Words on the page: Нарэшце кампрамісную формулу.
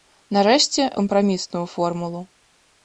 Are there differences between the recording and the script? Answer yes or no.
no